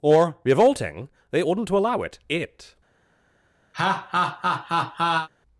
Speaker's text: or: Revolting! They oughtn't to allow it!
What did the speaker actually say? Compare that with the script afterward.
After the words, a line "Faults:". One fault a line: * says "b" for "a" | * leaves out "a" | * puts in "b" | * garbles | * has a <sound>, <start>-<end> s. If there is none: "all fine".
or: Revolting! They oughtn't to allow it it!
Faults:
* puts in "it"
* has a laugh, 3.7-5.3 s